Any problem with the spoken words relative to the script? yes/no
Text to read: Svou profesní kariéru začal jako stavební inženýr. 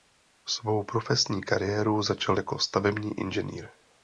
no